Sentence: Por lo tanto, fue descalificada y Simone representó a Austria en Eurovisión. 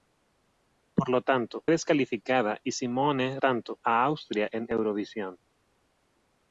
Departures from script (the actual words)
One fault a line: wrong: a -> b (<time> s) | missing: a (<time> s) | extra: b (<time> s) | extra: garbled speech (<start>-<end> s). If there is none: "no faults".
missing: fue (1.6 s)
wrong: representó -> tanto (3.4 s)